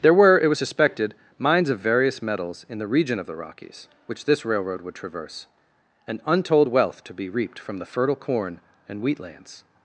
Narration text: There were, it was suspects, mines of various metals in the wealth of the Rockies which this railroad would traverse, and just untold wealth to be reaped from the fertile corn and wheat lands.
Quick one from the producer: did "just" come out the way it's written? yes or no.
no